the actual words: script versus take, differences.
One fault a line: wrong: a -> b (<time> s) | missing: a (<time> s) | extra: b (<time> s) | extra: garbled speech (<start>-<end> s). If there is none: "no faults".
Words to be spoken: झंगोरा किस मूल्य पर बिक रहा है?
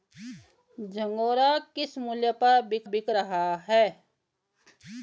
extra: बिक (2.8 s)